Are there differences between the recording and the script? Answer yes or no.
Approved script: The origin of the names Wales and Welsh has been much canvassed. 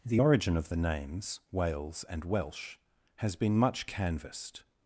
no